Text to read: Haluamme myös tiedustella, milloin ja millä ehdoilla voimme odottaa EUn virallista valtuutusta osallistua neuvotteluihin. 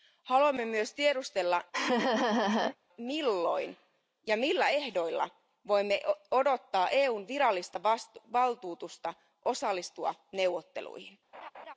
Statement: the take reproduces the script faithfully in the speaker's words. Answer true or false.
true